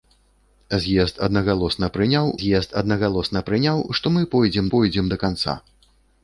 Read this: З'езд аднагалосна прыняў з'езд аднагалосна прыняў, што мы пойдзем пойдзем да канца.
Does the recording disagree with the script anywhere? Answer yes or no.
no